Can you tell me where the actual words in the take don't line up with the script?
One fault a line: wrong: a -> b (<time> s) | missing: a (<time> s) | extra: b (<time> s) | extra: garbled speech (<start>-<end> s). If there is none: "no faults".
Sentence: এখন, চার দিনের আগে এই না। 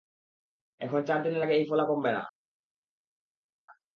extra: ফোলা কমবে (1.7 s)